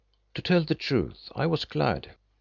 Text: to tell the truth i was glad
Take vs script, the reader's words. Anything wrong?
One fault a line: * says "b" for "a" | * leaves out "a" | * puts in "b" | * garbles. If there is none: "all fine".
all fine